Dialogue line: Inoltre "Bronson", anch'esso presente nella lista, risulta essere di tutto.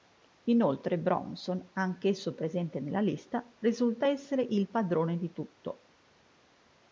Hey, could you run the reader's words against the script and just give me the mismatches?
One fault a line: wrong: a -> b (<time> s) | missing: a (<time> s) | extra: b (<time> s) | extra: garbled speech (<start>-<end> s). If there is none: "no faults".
extra: il padrone (4.4 s)